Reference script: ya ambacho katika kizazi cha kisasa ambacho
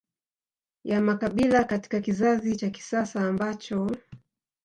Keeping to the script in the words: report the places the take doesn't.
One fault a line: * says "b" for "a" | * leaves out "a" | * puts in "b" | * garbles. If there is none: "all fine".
* says "makabila" for "ambacho"